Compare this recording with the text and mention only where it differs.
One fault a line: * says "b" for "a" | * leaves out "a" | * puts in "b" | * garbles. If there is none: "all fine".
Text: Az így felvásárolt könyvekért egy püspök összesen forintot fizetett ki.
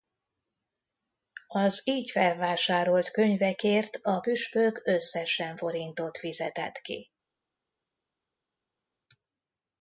* says "a" for "egy"